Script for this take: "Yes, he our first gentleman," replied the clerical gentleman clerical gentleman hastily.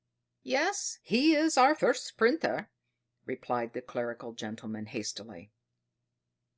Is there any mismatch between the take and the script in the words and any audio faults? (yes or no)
yes